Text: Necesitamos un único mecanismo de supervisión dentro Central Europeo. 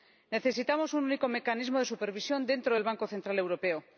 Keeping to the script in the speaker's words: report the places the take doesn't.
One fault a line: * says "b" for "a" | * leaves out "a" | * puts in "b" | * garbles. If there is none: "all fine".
* puts in "del Banco"